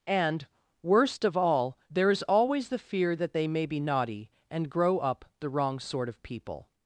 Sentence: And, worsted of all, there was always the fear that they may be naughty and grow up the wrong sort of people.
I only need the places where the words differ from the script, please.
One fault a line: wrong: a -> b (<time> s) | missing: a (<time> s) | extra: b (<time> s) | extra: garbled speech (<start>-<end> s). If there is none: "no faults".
wrong: worsted -> worst (0.8 s)
wrong: was -> is (2.1 s)